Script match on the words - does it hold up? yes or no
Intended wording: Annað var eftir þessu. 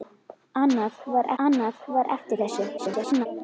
no